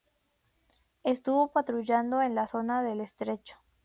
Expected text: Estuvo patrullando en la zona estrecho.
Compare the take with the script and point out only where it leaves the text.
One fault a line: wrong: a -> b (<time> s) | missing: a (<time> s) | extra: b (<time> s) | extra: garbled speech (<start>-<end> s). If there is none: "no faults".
extra: del (2.8 s)